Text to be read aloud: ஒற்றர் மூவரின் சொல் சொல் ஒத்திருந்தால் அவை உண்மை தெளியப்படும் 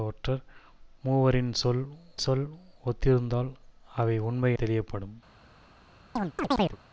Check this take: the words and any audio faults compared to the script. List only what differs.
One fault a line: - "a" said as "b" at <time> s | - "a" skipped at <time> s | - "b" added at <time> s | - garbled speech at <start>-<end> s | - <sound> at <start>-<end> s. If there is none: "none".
- chirp at 6.2-6.8 s